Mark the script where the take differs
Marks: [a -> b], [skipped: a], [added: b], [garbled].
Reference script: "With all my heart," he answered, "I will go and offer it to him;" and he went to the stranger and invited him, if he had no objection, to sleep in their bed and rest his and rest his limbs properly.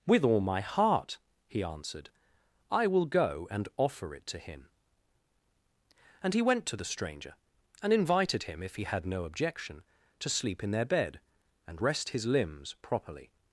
"With all my heart," he answered, "I will go and offer it to him;" and he went to the stranger and invited him, if he had no objection, to sleep in their bed and rest his [skipped: and rest his] limbs properly.